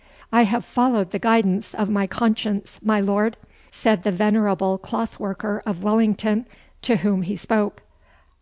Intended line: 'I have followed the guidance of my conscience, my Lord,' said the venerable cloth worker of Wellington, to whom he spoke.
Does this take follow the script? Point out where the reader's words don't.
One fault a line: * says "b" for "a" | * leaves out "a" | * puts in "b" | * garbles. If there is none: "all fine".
all fine